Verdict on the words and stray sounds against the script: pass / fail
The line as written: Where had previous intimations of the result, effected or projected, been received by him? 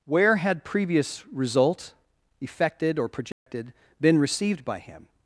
fail